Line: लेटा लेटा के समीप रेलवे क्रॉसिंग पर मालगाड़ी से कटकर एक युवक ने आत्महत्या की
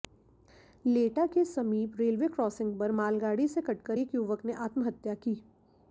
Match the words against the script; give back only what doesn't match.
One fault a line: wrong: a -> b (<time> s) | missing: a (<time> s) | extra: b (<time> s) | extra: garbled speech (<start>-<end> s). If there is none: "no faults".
missing: लेटा (1.2 s)